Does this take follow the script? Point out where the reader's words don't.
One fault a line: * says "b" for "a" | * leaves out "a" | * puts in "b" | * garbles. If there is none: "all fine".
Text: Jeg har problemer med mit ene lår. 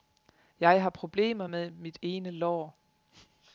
all fine